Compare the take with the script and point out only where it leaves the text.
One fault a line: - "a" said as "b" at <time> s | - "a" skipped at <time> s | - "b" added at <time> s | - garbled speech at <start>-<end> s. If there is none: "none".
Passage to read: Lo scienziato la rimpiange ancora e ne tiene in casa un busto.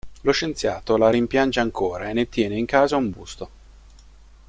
none